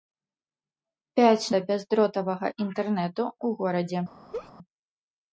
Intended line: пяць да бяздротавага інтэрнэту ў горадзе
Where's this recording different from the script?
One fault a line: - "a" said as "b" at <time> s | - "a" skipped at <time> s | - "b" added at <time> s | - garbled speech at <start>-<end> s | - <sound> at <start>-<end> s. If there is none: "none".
- laugh at 4.3-4.5 s